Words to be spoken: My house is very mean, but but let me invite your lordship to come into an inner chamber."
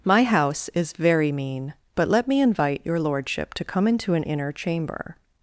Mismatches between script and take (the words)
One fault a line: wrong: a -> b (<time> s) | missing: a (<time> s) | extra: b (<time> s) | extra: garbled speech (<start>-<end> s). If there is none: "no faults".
missing: but (2.1 s)